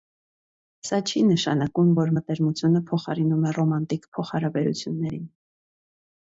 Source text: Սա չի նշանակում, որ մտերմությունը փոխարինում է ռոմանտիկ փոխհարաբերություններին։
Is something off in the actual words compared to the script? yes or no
no